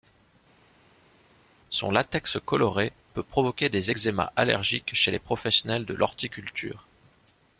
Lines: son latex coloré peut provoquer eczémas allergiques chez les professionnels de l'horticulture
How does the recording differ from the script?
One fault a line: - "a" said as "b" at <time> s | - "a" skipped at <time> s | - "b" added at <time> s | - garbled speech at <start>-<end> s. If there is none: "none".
- "des" added at 3.7 s